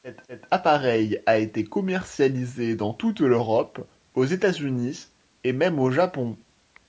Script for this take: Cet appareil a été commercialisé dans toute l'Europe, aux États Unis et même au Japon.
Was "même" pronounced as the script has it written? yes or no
yes